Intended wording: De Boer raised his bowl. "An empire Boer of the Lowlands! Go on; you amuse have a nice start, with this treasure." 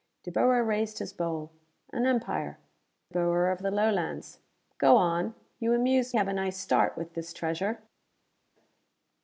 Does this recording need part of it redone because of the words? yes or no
no